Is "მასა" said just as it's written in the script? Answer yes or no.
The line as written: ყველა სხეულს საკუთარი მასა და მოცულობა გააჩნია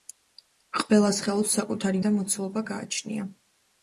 no